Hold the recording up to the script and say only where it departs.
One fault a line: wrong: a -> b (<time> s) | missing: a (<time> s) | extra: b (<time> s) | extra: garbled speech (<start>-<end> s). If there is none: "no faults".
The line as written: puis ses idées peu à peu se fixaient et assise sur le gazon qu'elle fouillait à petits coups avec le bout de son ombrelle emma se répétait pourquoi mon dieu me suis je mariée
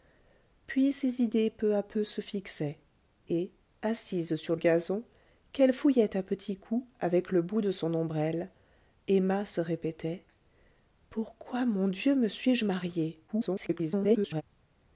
missing: le (4.5 s)
extra: garbled speech (13.3-14.4 s)